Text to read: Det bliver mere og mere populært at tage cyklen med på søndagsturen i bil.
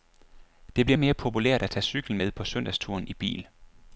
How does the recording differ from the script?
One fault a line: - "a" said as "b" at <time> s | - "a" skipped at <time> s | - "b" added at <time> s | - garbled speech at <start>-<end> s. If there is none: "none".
- "mere" skipped at 1.0 s